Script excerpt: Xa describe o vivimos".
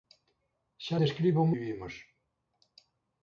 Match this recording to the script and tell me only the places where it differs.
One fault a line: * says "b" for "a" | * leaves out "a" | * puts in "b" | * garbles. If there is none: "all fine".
all fine